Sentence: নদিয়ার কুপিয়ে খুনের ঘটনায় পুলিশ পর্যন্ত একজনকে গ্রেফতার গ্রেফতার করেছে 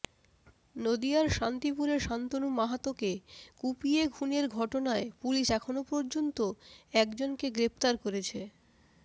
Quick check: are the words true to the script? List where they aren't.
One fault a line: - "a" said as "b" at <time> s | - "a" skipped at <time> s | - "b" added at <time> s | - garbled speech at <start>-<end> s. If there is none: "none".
- "শান্তিপুরে শান্তনু মাহাতোকে" added at 1.3 s
- "এখনও" added at 5.5 s
- "গ্রেফতার" skipped at 7.9 s